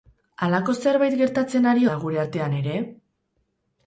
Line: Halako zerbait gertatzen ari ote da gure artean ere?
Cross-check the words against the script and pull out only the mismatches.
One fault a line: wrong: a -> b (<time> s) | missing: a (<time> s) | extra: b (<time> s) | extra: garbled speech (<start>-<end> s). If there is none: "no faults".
missing: ote (1.9 s)